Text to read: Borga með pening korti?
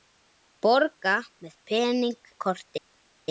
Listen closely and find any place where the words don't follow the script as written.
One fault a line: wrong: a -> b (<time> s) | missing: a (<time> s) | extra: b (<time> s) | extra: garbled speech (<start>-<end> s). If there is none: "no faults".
no faults